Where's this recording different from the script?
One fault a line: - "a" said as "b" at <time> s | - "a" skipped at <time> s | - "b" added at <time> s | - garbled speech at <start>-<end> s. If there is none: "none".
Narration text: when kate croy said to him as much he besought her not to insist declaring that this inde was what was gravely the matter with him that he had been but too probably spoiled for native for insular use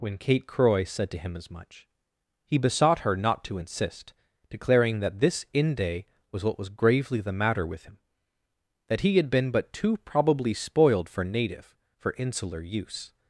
none